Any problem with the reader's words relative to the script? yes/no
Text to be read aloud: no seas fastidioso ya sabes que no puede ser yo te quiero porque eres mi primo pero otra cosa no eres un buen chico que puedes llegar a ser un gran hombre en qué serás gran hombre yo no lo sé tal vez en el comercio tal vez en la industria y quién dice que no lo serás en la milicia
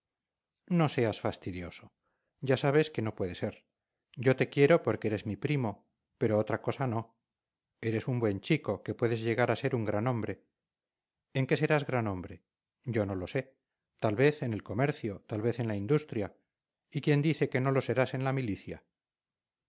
no